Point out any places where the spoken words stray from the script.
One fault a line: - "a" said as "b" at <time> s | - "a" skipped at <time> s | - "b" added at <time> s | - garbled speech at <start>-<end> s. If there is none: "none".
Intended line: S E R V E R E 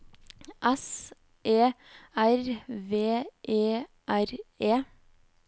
none